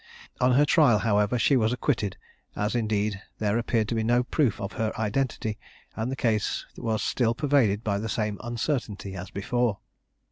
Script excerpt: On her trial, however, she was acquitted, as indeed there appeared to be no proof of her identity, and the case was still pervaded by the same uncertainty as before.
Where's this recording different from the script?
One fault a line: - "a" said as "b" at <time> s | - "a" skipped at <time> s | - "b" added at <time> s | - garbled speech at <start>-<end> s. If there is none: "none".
none